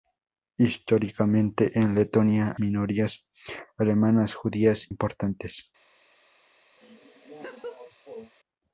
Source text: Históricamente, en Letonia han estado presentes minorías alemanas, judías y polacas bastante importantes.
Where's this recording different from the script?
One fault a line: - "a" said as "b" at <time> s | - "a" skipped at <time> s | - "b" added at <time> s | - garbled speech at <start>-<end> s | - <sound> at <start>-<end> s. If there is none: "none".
- "han estado presentes" skipped at 2.5 s
- "y polacas bastante" skipped at 4.9 s
- laugh at 6.8-8.3 s